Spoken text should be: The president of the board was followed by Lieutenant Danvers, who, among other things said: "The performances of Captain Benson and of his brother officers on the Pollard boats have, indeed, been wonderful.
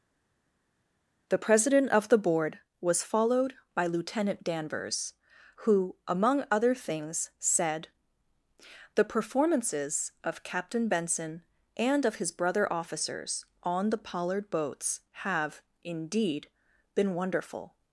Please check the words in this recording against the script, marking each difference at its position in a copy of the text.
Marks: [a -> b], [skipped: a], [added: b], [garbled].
The president of the board was followed by Lieutenant Danvers, who, among other things said: "The performances of Captain Benson and of his brother officers on the Pollard boats have, indeed, been wonderful.